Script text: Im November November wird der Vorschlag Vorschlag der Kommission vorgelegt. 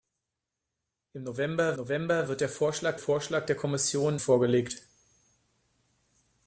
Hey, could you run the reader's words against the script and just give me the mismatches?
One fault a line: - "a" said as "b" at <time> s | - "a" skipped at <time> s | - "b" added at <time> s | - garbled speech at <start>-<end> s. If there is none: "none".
none